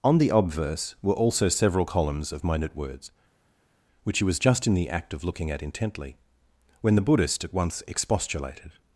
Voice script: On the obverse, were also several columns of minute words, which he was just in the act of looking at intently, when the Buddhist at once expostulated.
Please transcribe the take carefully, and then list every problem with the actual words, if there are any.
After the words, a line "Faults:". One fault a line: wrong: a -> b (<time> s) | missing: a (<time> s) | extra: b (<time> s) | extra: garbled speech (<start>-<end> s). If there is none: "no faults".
On the obverse, were also several columns of minute words, which he was just in the act of looking at intently, when the Buddhist at once expostulated.
Faults:
no faults